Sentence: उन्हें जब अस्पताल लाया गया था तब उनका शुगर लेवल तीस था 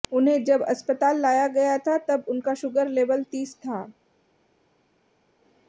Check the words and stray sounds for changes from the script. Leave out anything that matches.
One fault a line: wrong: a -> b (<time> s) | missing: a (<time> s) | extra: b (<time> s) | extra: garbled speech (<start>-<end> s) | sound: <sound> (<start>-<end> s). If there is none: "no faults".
no faults